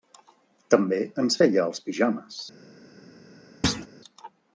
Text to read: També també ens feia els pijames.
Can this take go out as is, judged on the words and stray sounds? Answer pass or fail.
fail